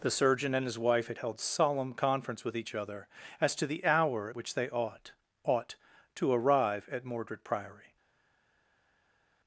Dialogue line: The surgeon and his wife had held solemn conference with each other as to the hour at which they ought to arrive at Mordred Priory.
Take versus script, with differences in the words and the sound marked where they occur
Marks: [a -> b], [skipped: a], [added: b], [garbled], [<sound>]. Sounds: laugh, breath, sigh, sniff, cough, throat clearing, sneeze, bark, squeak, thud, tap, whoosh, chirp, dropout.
The surgeon and his wife had held solemn conference with each other as to the hour at which they ought [added: ought] to arrive at Mordred Priory.